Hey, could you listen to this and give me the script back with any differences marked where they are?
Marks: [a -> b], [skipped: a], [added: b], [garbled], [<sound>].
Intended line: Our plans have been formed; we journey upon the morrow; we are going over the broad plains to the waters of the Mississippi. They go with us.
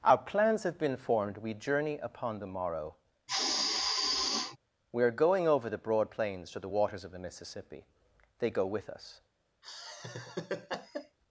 Our plans have been formed; we journey upon the morrow; [sigh] we are going over the broad plains to the waters of the Mississippi. They go with us. [laugh]